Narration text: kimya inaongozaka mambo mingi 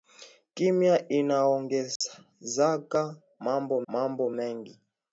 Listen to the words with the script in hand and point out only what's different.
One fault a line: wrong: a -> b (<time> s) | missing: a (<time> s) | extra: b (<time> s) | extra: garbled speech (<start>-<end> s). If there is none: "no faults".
extra: mambo (3.9 s)